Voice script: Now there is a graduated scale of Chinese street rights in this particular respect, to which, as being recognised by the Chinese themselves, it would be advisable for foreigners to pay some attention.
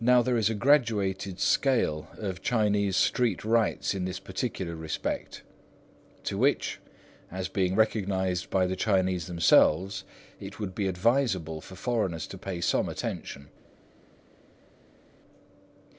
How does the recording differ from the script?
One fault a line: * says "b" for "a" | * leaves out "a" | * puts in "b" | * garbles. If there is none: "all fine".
all fine